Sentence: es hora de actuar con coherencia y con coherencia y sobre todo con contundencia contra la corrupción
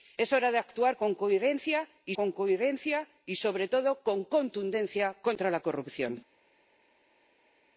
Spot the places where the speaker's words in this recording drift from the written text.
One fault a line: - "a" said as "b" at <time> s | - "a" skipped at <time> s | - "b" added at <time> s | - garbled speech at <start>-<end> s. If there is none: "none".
none